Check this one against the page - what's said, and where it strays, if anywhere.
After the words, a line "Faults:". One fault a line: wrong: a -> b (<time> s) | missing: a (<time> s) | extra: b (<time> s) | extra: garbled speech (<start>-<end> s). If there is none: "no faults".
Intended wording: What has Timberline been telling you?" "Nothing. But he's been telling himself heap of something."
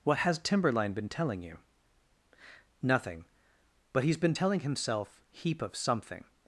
What has Timberline been telling you?" "Nothing. But he's been telling himself heap of something."
Faults:
no faults